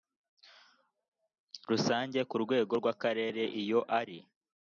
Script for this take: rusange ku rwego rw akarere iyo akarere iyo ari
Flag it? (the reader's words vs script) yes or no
yes